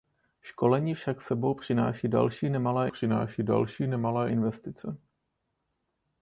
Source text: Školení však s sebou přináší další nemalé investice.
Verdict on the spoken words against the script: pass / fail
fail